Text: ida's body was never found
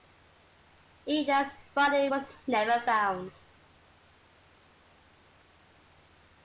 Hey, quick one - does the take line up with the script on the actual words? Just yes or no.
yes